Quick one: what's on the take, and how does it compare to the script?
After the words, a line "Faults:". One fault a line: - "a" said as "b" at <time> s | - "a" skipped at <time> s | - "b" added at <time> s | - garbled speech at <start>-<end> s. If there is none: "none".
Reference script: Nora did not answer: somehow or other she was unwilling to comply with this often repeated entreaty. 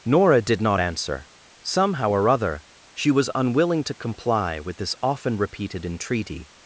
Nora did not answer: somehow or other she was unwilling to comply with this often repeated entreaty.
Faults:
none